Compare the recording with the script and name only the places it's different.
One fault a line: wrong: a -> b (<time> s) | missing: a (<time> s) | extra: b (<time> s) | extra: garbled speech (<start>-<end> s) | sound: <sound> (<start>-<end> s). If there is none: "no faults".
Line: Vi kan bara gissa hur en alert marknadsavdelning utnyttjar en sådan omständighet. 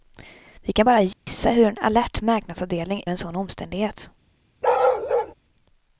sound: dropout (1.1-1.3 s)
missing: utnyttjar (3.0 s)
sound: bark (4.6-5.3 s)